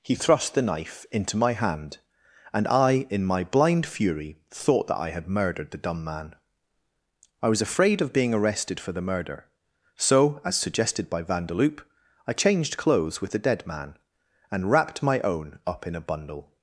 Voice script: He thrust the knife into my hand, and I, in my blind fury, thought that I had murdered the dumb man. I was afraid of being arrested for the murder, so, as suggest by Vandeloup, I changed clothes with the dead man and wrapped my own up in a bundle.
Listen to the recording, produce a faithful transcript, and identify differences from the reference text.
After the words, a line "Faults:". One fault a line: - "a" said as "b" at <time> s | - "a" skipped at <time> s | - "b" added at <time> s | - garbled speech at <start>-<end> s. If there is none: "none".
He thrust the knife into my hand, and I, in my blind fury, thought that I had murdered the dumb man. I was afraid of being arrested for the murder, so, as suggested by Vandeloup, I changed clothes with the dead man and wrapped my own up in a bundle.
Faults:
- "suggest" said as "suggested" at 10.6 s